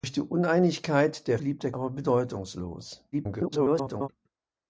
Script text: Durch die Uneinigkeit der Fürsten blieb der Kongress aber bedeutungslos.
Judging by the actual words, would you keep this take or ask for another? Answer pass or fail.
fail